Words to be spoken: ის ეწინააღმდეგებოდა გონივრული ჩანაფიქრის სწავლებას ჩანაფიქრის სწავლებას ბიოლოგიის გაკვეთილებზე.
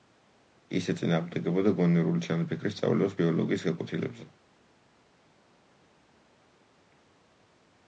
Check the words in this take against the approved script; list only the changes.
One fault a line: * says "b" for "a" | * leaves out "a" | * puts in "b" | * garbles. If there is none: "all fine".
* leaves out "ჩანაფიქრის სწავლებას"